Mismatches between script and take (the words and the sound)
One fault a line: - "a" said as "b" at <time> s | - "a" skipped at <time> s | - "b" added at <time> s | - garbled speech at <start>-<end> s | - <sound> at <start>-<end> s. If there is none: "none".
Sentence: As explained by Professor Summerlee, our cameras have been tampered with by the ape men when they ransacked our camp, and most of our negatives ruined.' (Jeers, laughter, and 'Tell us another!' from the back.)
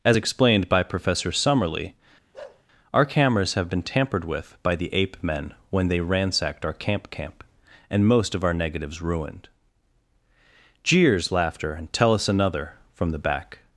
- bark at 2.3-2.6 s
- "camp" added at 7.1 s